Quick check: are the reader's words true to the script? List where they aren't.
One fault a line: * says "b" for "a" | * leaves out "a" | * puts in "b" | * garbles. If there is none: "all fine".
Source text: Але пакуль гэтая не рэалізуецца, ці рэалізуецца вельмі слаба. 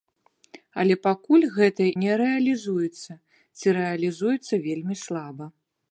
all fine